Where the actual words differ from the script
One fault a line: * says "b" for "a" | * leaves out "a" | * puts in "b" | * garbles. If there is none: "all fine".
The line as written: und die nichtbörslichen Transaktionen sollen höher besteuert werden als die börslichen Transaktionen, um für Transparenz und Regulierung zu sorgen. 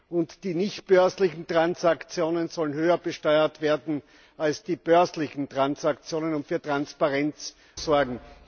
* leaves out "und Regulierung zu"